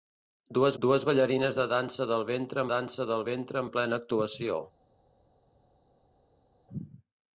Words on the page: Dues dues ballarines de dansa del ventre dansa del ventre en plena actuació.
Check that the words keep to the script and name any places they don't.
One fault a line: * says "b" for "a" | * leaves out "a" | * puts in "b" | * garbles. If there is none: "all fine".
all fine